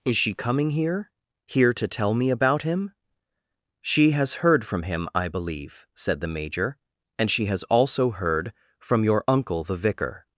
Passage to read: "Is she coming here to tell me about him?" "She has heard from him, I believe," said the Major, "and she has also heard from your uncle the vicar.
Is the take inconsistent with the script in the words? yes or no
yes